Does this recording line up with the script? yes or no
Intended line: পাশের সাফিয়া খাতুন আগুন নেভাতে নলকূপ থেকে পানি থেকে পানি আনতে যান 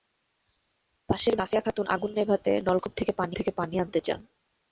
yes